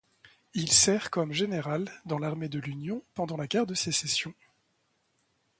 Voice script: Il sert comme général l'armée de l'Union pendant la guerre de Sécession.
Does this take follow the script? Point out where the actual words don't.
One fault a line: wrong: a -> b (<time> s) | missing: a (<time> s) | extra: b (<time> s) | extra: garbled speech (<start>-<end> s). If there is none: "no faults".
extra: dans (2.1 s)